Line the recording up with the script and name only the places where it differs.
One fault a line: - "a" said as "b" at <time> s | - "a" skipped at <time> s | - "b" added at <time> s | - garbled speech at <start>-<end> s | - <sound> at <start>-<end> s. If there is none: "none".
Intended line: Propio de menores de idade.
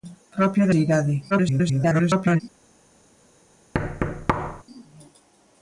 - "menores" skipped at 0.7 s
- garbled speech at 1.3-2.4 s
- thud at 3.7-4.6 s